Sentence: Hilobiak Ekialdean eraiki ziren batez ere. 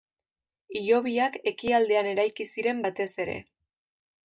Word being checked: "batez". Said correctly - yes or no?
yes